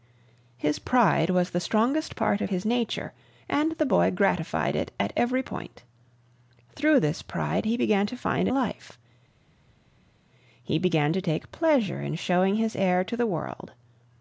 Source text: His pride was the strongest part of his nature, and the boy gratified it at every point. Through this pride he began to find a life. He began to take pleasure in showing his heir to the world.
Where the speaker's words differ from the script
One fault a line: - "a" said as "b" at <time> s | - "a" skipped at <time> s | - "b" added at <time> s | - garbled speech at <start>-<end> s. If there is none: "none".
none